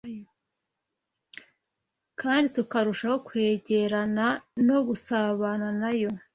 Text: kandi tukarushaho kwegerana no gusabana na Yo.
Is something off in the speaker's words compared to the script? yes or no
no